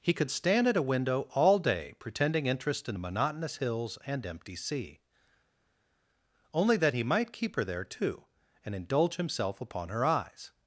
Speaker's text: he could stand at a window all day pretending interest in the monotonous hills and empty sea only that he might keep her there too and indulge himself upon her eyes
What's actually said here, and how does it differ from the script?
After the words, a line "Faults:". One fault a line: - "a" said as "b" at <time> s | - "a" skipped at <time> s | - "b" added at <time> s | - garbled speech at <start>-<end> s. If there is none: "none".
he could stand at a window all day pretending interest in the monotonous hills and empty sea only that he might keep her there too and indulge himself upon her eyes
Faults:
none